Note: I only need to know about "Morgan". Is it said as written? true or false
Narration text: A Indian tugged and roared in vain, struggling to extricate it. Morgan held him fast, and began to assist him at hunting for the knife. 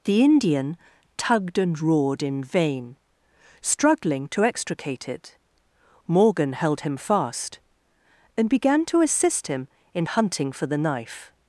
true